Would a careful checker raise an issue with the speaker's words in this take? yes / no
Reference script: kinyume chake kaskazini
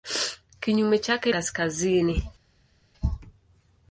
no